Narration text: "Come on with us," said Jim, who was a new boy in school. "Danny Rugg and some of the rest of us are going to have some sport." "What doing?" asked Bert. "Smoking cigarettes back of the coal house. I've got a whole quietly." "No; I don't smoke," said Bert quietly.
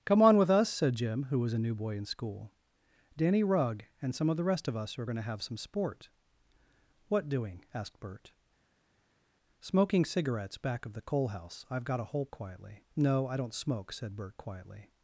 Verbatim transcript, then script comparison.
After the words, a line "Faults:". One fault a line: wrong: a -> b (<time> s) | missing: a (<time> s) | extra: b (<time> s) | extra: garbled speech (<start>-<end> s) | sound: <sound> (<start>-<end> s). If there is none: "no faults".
"Come on with us," said Jim, who was a new boy in school. "Danny Rugg and some of the rest of us are going to have some sport." "What doing?" asked Bert. "Smoking cigarettes back of the coal house. I've got a whole quietly." "No; I don't smoke," said Bert quietly.
Faults:
no faults